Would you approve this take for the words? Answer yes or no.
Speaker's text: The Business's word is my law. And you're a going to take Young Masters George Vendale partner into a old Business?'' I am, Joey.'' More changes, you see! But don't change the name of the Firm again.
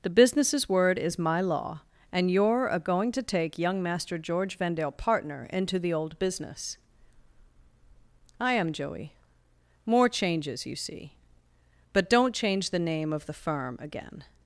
no